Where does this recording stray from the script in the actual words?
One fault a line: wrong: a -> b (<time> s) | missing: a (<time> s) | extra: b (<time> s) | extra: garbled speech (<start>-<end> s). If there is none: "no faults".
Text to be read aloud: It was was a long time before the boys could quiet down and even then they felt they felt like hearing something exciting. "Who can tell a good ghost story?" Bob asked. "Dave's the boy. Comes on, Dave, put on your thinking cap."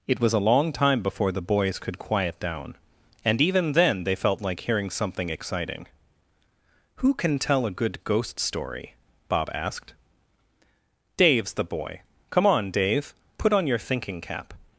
missing: was (0.3 s)
missing: they felt (4.4 s)
wrong: Comes -> Come (12.3 s)